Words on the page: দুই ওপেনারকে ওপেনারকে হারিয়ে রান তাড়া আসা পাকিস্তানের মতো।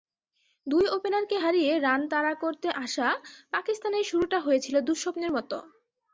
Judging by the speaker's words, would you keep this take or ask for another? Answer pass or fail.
fail